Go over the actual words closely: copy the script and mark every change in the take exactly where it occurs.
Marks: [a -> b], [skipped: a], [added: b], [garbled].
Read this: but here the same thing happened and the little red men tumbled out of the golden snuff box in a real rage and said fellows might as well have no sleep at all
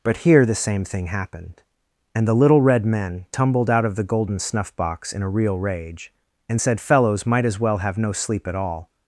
but here the same thing happened and the little red men tumbled out of the golden snuff box in a real rage and said fellows might as well have no sleep at all